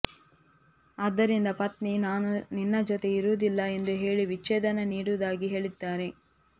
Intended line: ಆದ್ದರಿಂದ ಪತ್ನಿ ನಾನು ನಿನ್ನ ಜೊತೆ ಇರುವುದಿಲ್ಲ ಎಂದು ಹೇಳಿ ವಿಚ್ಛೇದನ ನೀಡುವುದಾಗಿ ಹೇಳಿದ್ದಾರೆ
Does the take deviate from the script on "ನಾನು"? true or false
false